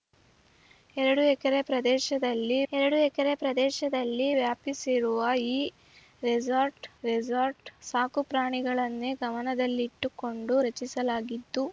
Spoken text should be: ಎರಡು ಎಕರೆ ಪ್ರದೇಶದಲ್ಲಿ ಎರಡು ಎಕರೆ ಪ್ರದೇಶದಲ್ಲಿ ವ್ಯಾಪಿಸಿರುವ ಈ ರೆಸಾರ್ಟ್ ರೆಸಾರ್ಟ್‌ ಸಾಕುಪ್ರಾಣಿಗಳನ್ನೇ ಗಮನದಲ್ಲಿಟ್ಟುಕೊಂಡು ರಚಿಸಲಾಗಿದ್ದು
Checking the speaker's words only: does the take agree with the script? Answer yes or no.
yes